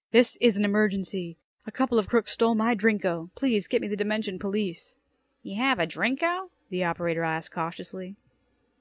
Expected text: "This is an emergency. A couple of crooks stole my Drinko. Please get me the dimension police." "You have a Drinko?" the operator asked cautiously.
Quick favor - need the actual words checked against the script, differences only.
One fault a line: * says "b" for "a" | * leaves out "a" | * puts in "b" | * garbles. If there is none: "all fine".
all fine